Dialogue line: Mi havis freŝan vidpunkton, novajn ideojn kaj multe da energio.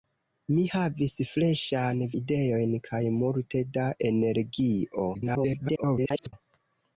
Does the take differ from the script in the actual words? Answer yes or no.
yes